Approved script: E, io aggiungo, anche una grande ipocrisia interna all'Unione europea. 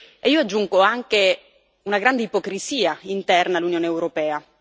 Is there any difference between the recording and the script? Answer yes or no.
no